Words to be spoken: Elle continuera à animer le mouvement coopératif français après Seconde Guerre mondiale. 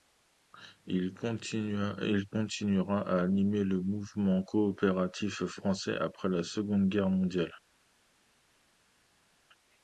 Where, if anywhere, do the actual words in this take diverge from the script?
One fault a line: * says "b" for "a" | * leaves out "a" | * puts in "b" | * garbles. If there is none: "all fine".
* says "Il" for "Elle"
* puts in "la"